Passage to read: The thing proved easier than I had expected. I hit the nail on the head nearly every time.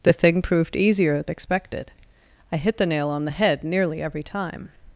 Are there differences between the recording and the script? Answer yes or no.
yes